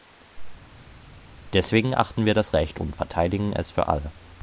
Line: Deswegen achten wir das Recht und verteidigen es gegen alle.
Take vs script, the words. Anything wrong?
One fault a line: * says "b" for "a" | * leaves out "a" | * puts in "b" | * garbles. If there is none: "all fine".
* says "für" for "gegen"